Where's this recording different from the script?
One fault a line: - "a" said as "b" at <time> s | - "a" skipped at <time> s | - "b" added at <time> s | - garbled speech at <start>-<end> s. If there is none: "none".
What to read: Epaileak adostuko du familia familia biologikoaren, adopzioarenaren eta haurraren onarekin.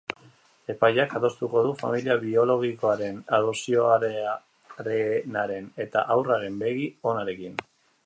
- "familia" skipped at 2.2 s
- "begi" added at 6.7 s